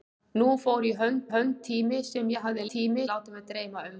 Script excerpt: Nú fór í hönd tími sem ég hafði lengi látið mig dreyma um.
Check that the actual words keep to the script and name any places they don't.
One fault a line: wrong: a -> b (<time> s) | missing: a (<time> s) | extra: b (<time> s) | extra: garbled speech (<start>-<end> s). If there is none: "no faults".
extra: hönd (1.3 s)
wrong: lengi -> tími (2.7 s)